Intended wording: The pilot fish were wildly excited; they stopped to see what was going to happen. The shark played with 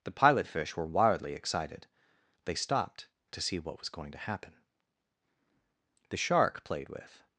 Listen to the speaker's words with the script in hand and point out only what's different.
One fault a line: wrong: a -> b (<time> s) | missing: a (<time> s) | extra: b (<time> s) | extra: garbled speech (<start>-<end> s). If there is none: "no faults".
no faults